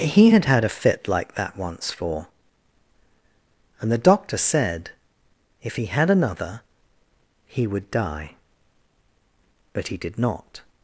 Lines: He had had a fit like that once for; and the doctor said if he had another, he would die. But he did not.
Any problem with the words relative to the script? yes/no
no